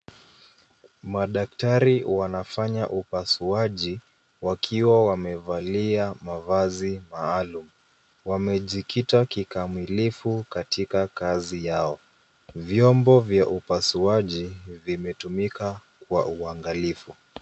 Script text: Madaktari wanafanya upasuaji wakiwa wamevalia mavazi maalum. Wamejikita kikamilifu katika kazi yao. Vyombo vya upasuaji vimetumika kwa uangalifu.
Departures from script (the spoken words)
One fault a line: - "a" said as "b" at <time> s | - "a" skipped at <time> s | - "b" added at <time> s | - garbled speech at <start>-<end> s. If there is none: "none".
none